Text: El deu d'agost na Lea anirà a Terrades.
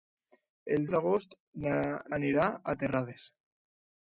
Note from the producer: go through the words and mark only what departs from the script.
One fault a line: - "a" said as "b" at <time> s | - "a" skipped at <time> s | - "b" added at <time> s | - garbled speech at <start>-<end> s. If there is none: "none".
- "deu" skipped at 0.9 s
- "Lea" skipped at 1.7 s